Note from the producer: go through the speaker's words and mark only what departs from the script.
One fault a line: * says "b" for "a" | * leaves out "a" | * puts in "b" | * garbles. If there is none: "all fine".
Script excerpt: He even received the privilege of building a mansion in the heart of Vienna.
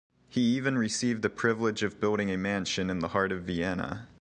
all fine